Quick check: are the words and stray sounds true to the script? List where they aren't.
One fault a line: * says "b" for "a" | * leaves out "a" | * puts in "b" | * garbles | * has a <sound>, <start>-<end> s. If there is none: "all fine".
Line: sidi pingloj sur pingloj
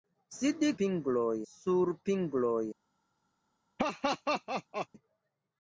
* has a laugh, 3.8-4.9 s